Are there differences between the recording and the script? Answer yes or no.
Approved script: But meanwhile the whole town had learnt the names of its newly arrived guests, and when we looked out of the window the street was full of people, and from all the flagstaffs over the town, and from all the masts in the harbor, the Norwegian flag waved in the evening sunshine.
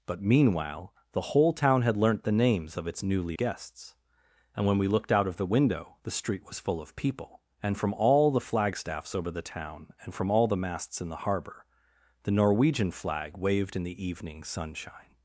yes